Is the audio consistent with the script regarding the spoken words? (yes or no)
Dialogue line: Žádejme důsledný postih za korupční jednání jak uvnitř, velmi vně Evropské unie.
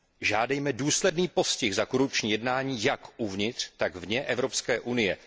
no